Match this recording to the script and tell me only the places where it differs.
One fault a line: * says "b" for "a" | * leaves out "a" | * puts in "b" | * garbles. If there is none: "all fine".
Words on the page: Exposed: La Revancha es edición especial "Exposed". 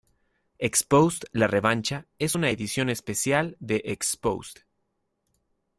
* puts in "una"
* puts in "de"